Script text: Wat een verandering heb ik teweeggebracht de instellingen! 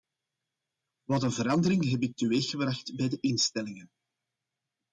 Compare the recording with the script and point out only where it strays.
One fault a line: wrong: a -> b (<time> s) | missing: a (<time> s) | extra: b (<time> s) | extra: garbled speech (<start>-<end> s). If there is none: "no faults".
extra: bij (3.0 s)